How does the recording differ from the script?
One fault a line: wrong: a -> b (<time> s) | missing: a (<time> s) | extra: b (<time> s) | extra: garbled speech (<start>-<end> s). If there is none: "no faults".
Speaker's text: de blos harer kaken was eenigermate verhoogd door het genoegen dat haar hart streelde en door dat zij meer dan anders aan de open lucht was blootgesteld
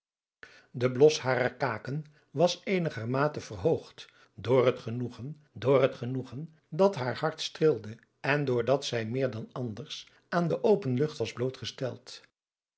extra: door het genoegen (5.5 s)